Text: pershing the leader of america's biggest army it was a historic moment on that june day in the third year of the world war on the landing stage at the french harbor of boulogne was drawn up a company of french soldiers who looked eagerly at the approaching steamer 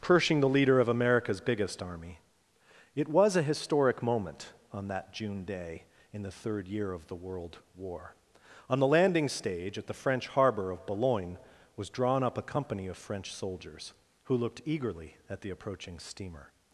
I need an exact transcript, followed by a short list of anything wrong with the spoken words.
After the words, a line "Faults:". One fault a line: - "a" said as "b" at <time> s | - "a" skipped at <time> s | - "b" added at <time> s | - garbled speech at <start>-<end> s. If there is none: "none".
pershing the leader of america's biggest army it was a historic moment on that june day in the third year of the world war on the landing stage at the french harbor of boulogne was drawn up a company of french soldiers who looked eagerly at the approaching steamer
Faults:
none